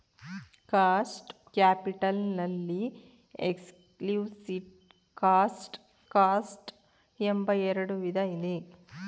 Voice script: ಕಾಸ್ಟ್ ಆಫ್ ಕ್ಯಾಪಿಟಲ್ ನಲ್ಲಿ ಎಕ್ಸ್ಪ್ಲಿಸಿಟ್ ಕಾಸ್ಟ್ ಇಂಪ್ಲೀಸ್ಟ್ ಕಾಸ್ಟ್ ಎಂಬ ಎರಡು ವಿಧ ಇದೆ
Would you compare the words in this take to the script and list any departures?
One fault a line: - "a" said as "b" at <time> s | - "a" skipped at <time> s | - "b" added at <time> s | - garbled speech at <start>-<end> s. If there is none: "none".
- "ಆಫ್" skipped at 1.3 s
- "ಇಂಪ್ಲೀಸ್ಟ್" skipped at 5.8 s